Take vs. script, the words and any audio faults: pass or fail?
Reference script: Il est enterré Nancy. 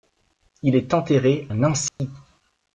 fail